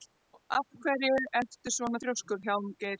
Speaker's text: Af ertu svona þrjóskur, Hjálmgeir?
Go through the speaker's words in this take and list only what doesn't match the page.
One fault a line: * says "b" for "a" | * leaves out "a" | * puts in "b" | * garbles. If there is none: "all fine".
* puts in "hverju"